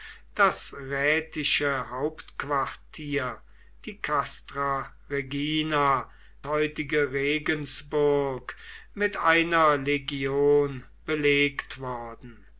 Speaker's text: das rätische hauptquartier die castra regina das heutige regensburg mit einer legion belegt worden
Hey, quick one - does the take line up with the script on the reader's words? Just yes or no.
no